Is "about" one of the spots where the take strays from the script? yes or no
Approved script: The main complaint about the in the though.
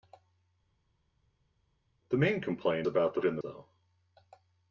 no